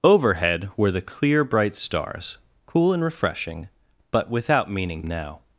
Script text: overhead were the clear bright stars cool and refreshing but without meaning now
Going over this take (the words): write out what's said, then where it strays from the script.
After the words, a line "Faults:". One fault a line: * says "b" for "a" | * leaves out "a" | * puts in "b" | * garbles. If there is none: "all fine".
overhead were the clear bright stars cool and refreshing but without meaning now
Faults:
all fine